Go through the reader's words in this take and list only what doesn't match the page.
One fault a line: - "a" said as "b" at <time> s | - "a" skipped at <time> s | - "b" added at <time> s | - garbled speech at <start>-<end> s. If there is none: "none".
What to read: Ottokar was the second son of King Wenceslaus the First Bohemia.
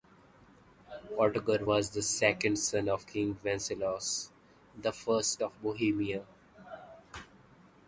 - "of" added at 5.4 s